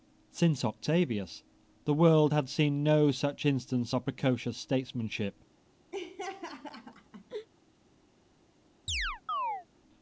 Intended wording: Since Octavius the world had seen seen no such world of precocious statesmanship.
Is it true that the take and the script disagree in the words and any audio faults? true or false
true